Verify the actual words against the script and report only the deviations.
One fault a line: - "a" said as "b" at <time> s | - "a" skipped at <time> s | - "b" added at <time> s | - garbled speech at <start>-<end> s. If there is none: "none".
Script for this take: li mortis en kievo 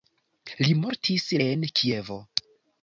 none